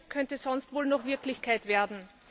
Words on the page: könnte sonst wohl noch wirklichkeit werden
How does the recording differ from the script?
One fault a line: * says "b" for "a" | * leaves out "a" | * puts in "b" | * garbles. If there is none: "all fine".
all fine